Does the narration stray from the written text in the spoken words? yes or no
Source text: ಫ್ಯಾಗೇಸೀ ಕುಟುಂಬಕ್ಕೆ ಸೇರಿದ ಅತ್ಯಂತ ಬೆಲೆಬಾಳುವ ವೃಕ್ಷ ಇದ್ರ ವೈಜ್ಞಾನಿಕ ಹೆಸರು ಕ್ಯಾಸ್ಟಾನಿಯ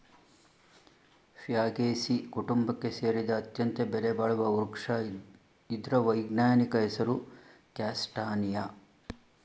no